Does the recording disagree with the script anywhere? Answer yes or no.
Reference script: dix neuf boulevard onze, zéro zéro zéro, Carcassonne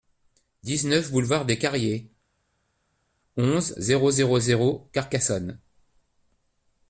yes